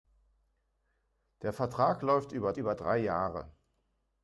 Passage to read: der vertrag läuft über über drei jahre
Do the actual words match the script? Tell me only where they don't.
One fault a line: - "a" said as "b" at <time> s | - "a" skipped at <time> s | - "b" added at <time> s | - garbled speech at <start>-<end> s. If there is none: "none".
none